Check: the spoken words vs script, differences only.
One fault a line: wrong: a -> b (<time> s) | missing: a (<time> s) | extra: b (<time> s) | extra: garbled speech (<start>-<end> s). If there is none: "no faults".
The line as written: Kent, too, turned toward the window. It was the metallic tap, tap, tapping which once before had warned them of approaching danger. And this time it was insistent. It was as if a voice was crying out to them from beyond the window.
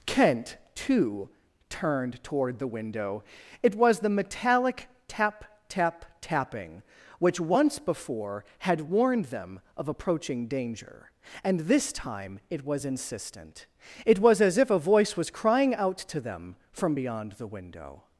no faults